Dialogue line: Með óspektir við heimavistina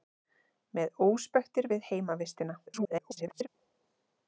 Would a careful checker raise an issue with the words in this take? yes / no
yes